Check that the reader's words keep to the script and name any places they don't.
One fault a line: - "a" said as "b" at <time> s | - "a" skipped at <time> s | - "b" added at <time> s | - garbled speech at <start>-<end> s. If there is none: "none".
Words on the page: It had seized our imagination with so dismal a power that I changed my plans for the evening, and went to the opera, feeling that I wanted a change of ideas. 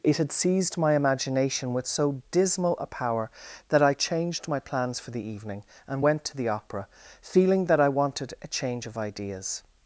- "our" said as "my" at 0.8 s